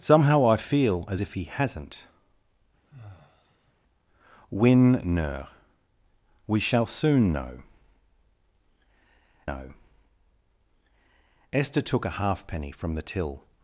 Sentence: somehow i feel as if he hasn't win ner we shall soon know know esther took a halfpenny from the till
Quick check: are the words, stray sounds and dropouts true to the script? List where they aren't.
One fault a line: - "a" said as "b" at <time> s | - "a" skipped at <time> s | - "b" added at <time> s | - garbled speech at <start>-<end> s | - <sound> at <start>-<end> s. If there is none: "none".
- sigh at 2.8-3.7 s